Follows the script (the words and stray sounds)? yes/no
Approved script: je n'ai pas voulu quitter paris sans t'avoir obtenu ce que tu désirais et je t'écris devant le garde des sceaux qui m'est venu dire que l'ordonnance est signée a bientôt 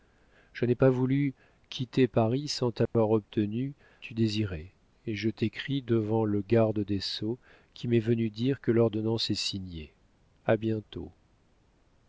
no